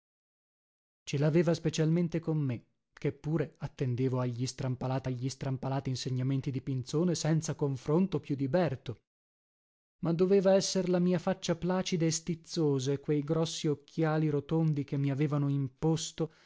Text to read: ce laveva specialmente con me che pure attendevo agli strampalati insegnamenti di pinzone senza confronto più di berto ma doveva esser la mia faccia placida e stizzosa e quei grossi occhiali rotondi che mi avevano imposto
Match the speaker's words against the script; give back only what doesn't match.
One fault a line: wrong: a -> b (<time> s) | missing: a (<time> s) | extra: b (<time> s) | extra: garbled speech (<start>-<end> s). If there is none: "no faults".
extra: agli strampalati (5.0 s)